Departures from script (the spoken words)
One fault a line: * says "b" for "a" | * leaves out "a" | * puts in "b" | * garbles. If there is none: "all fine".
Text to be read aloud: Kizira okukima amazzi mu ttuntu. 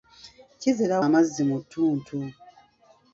* leaves out "okukima"